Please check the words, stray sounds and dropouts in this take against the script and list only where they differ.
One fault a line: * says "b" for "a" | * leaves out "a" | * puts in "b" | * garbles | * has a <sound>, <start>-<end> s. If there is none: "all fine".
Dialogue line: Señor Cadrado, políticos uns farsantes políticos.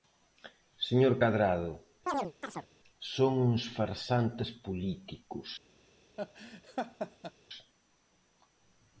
* has a chirp, 2.1-2.7 s
* says "son" for "políticos"
* has a laugh, 6.2-7.3 s